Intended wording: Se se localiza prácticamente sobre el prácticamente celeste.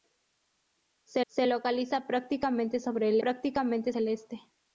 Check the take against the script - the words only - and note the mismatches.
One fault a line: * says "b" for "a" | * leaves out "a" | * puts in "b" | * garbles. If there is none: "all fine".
all fine